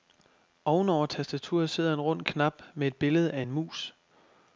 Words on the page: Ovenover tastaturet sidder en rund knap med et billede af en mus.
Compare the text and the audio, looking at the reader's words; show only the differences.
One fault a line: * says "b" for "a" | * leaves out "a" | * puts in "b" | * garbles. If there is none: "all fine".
all fine